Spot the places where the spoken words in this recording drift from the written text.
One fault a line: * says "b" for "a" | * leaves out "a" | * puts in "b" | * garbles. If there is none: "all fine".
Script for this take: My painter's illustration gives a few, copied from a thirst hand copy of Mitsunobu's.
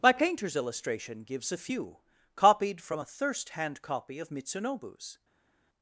all fine